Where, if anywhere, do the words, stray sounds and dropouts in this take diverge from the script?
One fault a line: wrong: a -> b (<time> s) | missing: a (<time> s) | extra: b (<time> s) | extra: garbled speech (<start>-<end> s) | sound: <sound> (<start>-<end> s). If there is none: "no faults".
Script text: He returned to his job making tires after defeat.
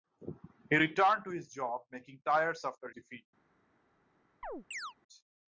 sound: chirp (4.4-4.9 s)